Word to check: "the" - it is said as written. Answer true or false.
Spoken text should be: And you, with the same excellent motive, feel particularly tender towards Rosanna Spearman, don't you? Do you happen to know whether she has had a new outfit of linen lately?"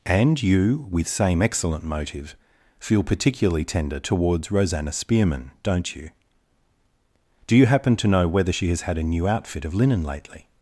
false